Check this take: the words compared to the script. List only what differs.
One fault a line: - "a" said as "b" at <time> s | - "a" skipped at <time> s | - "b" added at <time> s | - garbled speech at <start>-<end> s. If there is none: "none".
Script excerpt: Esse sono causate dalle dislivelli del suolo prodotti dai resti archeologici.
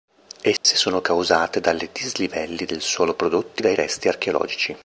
none